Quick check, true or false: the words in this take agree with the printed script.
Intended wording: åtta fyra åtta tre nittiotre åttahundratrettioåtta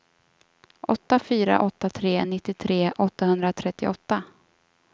true